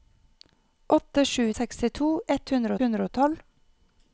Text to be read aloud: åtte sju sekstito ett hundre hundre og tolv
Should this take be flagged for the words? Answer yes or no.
no